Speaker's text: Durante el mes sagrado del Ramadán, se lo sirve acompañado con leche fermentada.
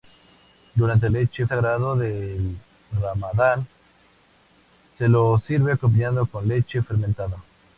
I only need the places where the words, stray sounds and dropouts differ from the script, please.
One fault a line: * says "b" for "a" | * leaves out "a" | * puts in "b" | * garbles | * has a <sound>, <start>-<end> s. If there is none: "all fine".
* says "leche" for "mes"